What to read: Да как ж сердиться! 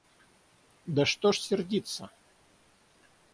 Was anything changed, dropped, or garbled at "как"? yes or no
yes